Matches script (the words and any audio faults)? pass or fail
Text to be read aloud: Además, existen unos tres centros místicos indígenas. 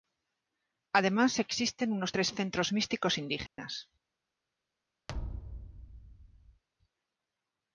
fail